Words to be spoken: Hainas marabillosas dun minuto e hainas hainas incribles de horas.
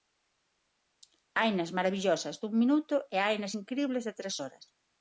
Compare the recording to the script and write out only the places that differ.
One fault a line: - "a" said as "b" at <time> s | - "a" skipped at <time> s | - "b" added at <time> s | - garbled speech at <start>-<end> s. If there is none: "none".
- "hainas" skipped at 3.5 s
- "tres" added at 4.2 s